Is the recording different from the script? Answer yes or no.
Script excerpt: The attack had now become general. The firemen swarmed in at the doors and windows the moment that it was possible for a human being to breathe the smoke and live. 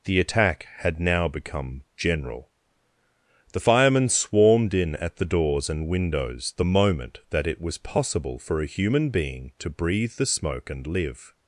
no